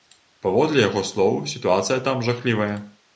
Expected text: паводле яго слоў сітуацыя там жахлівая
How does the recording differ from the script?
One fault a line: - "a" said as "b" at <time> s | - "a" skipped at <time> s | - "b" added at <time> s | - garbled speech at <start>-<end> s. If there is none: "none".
none